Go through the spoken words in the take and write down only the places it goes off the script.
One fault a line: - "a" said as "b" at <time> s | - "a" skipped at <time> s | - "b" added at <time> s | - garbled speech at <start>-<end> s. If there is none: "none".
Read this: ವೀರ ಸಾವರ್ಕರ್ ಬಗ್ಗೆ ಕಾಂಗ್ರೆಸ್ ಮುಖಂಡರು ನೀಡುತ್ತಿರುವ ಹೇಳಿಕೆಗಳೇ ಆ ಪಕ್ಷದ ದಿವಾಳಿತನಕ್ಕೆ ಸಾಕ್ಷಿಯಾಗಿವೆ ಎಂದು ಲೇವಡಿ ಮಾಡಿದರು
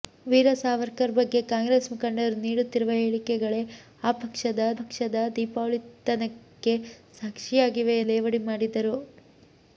- "ಪಕ್ಷದ" added at 4.8 s
- "ಎಂದು" skipped at 8.0 s